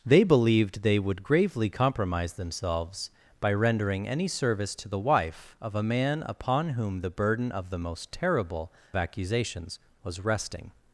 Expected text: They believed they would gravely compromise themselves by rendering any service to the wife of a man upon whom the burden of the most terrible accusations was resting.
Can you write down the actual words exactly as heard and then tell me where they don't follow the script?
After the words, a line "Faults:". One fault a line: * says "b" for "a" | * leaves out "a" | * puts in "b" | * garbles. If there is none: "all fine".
They believed they would gravely compromise themselves by rendering any service to the wife of a man upon whom the burden of the most terrible accusations was resting.
Faults:
all fine